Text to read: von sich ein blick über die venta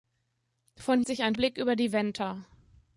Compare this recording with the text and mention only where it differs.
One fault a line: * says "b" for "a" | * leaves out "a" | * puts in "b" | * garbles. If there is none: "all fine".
all fine